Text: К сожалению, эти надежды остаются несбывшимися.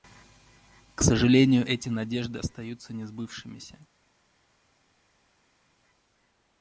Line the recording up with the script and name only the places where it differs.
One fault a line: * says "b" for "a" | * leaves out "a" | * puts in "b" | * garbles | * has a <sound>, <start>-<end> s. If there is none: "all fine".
all fine